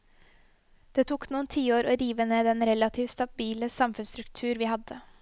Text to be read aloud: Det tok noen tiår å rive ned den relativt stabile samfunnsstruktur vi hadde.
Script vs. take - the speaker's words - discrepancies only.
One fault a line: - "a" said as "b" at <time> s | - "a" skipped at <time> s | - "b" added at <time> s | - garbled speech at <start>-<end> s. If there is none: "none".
none